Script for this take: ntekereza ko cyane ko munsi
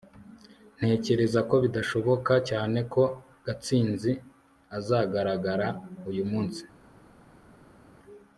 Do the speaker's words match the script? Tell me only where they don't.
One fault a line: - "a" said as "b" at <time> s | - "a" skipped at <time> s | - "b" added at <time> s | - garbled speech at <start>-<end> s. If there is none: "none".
- "bidashoboka" added at 1.6 s
- "gatsinzi azagaragara uyu" added at 3.5 s